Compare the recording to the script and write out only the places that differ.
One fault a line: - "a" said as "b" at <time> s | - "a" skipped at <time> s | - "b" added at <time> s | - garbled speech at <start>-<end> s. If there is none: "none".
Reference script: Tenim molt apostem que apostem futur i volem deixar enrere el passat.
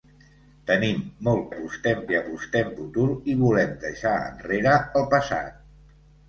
none